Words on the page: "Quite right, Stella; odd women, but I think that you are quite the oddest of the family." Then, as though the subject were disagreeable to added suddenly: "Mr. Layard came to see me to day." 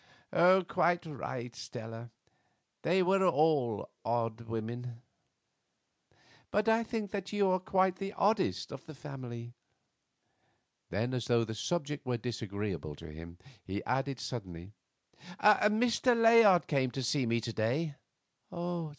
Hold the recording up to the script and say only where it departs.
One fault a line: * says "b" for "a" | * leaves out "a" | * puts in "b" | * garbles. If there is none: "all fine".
* puts in "they were all"
* puts in "him he"